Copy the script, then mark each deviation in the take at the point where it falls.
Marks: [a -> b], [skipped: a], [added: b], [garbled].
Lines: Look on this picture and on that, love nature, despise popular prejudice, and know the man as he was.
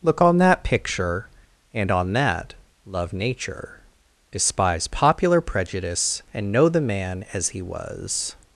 Look on [this -> that] picture and on that, love nature, despise popular prejudice, and know the man as he was.